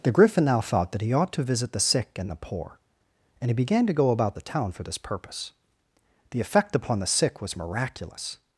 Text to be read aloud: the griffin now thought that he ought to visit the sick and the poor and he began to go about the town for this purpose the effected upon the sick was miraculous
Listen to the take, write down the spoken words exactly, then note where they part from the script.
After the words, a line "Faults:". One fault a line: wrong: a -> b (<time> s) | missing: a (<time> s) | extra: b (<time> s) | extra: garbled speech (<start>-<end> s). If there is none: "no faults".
the griffin now thought that he ought to visit the sick and the poor and he began to go about the town for this purpose the effect upon the sick was miraculous
Faults:
wrong: effected -> effect (6.4 s)